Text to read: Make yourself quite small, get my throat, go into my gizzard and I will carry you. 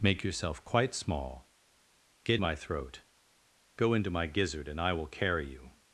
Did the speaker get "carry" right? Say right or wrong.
right